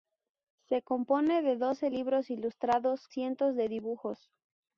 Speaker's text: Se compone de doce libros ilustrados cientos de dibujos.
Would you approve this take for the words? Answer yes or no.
yes